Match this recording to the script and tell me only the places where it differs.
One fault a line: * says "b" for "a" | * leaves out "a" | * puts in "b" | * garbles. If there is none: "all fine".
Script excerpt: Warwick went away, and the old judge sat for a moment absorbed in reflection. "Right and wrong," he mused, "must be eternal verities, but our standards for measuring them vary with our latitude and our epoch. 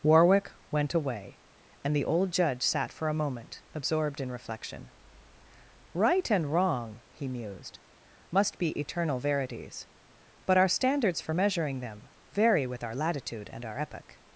all fine